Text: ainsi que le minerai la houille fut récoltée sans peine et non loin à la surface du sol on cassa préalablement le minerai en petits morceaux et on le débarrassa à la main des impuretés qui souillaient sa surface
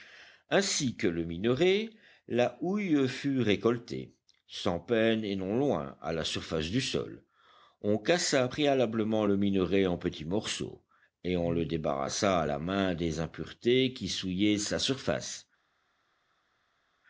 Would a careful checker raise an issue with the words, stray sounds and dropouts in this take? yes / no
no